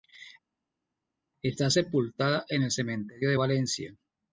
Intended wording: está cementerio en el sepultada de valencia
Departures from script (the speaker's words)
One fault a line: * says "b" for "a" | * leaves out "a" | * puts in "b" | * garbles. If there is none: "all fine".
* says "sepultada" for "cementerio"
* says "cementerio" for "sepultada"